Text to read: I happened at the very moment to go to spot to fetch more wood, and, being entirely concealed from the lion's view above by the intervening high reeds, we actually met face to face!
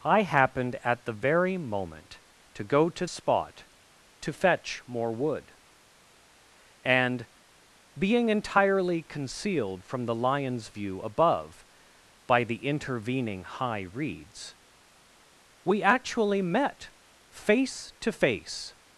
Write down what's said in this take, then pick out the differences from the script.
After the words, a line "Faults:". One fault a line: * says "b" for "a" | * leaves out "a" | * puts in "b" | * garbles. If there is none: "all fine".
I happened at the very moment to go to spot to fetch more wood, and, being entirely concealed from the lion's view above by the intervening high reeds, we actually met face to face!
Faults:
all fine